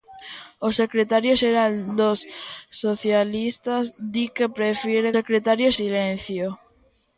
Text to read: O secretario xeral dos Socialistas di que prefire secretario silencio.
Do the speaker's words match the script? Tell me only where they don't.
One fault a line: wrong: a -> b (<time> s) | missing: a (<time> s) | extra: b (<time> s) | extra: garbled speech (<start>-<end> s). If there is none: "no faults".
no faults